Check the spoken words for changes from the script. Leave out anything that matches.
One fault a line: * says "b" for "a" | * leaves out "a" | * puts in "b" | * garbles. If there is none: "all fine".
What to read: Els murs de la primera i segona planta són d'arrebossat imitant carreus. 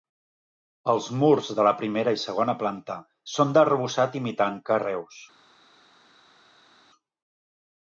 all fine